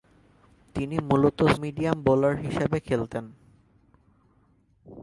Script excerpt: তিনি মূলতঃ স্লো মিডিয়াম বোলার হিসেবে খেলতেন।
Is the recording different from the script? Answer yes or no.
yes